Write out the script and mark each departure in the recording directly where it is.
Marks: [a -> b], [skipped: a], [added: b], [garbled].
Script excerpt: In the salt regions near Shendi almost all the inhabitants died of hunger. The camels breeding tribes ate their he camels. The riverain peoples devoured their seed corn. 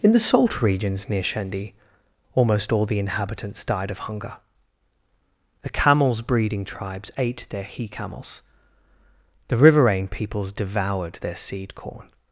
In the salt regions near Shendi almost all the inhabitants died of hunger. The camels breeding tribes ate their he camels. The riverain peoples devoured their seed corn.